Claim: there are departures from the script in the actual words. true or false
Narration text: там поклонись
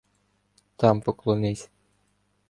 false